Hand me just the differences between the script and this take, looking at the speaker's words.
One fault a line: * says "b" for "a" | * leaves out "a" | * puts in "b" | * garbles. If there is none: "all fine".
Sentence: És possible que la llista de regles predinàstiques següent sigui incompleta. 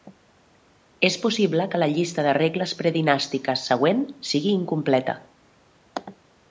all fine